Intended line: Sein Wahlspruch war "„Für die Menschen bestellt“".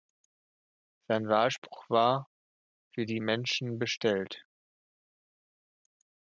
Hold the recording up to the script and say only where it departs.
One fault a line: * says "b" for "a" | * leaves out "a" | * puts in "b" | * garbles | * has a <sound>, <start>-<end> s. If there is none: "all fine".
all fine